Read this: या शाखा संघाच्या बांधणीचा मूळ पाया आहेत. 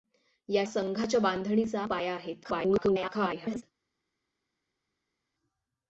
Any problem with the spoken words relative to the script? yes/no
yes